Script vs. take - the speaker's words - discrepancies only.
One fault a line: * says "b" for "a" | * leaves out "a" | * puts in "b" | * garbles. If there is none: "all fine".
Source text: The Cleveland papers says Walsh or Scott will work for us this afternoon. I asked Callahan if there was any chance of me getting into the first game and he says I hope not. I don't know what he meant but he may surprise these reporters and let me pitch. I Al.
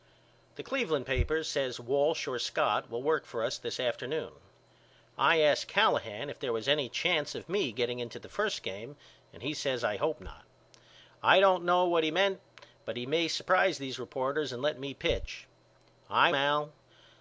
all fine